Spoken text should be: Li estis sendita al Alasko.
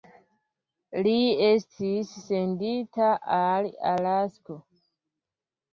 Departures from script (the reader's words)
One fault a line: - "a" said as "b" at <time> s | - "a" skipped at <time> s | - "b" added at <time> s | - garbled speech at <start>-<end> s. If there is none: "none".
none